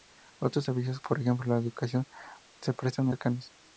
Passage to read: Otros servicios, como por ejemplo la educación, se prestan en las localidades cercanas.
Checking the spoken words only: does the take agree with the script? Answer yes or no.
no